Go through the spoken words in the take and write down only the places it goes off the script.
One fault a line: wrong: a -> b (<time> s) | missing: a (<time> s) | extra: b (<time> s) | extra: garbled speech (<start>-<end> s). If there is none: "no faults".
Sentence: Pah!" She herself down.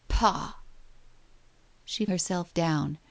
no faults